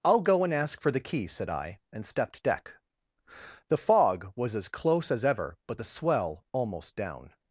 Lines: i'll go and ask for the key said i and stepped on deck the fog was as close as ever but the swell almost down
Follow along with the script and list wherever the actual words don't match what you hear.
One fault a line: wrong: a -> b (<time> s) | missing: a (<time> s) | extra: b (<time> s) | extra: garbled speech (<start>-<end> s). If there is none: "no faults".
missing: on (2.4 s)